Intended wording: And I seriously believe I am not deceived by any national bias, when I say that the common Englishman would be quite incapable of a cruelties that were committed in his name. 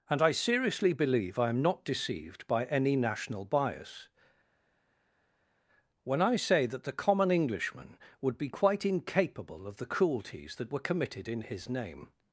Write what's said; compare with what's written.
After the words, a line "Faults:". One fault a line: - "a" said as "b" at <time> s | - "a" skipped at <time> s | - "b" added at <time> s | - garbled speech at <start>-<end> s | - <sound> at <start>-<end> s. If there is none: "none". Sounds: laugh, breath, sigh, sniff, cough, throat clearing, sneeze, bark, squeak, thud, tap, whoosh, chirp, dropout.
And I seriously believe I am not deceived by any national bias, when I say that the common Englishman would be quite incapable of the cruelties that were committed in his name.
Faults:
- "a" said as "the" at 9.8 s